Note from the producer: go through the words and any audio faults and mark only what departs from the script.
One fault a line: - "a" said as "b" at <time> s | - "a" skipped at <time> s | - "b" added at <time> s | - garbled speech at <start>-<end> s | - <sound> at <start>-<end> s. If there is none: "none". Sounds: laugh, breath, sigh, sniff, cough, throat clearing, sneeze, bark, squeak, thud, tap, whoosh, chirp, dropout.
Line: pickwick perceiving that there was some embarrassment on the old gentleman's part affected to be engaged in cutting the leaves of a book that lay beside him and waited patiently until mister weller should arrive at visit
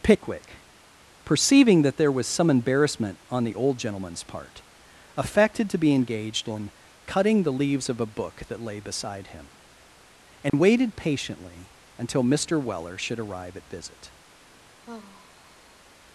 - dropout at 10.5-10.5 s
- sigh at 14.8-15.8 s